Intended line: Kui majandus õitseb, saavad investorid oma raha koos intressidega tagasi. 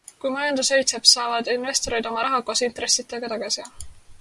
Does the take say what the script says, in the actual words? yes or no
yes